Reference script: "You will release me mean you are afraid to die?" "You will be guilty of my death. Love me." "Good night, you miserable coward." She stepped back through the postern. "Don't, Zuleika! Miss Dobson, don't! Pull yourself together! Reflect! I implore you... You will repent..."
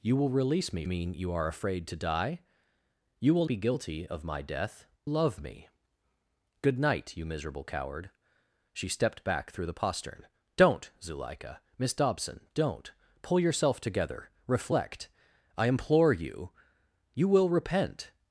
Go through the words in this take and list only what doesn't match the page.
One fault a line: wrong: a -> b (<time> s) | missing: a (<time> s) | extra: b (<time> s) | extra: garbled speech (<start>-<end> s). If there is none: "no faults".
no faults